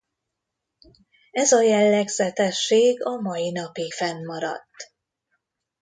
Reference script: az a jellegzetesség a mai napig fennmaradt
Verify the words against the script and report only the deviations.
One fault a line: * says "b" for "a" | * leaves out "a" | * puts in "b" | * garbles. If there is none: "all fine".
* says "ez" for "az"